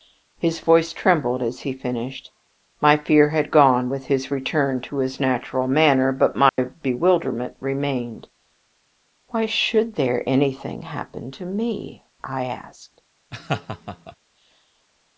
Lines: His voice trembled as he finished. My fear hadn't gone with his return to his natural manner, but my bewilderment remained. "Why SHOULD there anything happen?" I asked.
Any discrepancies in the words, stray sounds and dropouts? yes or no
yes